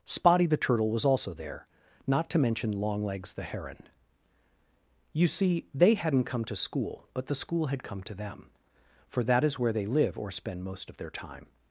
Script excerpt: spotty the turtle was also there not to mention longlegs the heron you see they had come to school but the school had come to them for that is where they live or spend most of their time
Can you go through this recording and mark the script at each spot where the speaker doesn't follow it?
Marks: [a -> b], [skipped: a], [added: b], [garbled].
spotty the turtle was also there not to mention longlegs the heron you see they [had -> hadn't] come to school but the school had come to them for that is where they live or spend most of their time